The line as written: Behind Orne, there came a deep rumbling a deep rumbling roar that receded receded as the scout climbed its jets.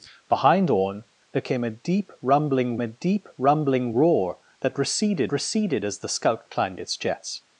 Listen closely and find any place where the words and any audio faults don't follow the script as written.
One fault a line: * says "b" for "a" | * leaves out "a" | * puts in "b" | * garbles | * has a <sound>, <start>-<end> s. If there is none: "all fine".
all fine